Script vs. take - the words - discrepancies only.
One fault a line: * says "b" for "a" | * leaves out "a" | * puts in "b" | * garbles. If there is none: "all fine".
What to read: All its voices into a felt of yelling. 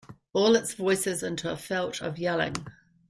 all fine